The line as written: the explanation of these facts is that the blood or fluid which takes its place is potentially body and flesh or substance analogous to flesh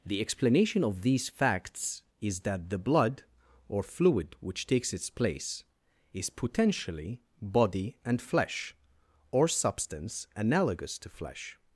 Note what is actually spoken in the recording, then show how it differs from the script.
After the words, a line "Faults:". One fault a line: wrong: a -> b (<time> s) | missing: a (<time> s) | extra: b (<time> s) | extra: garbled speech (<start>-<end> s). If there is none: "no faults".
the explanation of these facts is that the blood or fluid which takes its place is potentially body and flesh or substance analogous to flesh
Faults:
no faults